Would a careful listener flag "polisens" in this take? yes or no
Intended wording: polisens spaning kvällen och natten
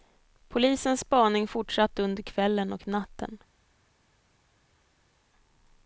no